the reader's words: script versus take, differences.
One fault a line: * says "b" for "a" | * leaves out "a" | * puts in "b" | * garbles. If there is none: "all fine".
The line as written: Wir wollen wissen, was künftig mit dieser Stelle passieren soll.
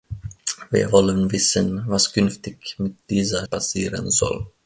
* leaves out "Stelle"